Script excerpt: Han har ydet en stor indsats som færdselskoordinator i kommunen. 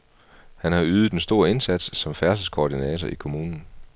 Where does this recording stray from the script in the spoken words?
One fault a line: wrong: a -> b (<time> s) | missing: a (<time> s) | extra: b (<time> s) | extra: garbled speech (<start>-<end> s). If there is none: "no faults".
no faults